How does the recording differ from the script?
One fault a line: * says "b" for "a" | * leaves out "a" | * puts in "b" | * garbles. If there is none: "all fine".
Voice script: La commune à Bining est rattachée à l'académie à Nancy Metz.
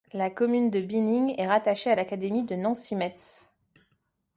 * says "de" for "à"
* says "de" for "à"